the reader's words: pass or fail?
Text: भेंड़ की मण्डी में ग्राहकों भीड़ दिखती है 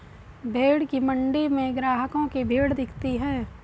fail